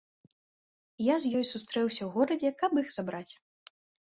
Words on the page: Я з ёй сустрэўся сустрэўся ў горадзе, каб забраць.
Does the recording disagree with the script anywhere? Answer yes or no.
yes